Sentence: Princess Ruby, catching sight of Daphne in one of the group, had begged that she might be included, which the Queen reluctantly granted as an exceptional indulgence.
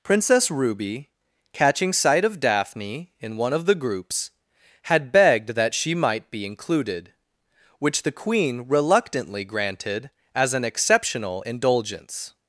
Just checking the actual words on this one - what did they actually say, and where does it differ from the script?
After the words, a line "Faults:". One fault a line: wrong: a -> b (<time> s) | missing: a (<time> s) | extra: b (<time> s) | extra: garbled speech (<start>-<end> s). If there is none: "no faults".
Princess Ruby, catching sight of Daphne in one of the groups, had begged that she might be included, which the Queen reluctantly granted as an exceptional indulgence.
Faults:
wrong: group -> groups (3.8 s)